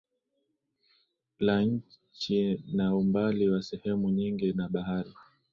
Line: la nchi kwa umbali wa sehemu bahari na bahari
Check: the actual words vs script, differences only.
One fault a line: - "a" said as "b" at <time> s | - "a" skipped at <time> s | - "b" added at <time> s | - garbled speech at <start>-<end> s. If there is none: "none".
- "kwa" said as "na" at 2.7 s
- "bahari" said as "nyingi" at 4.1 s